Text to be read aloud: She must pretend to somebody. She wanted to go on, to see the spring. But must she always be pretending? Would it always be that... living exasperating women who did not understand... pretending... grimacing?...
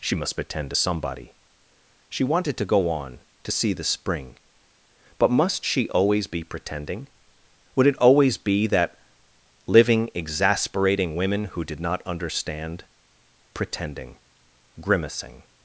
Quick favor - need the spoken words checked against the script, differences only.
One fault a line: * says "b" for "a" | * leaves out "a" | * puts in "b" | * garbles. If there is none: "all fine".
all fine